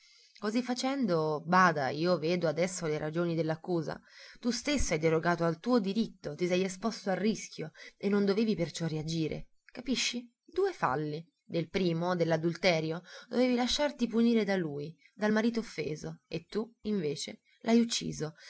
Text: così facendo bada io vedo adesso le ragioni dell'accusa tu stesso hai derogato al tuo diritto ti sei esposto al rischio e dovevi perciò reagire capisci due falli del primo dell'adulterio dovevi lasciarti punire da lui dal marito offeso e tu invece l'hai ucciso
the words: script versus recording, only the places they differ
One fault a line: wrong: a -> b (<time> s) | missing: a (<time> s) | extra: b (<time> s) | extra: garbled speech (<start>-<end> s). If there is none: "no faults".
extra: non (8.1 s)